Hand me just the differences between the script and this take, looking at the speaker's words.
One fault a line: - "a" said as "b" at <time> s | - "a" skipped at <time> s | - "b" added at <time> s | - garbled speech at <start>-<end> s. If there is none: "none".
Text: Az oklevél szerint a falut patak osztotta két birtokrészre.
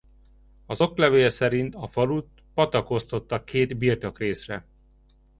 none